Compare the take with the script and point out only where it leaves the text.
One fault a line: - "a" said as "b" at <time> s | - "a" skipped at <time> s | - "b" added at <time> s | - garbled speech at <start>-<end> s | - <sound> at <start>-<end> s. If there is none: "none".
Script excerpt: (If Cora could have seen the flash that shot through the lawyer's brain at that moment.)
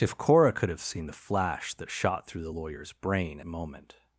- "at that" skipped at 3.4 s